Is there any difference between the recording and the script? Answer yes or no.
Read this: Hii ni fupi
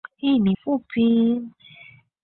no